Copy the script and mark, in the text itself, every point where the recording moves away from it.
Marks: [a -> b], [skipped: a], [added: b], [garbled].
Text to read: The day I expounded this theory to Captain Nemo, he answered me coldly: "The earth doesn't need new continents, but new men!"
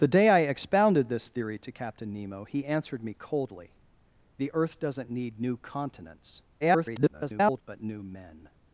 The day I expounded this theory to Captain Nemo, he answered me coldly: "The earth doesn't need new continents, [garbled] but new men!"